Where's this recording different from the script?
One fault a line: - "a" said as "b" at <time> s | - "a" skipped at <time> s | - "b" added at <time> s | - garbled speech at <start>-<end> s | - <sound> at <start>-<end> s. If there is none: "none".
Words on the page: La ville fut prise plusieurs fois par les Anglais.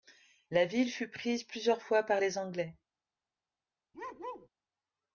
- bark at 3.9-4.5 s